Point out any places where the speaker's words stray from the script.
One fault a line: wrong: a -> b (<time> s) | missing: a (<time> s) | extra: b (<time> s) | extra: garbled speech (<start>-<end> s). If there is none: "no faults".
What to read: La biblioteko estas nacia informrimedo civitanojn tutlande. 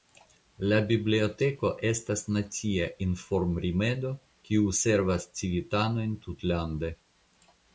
extra: kiu servas (4.5 s)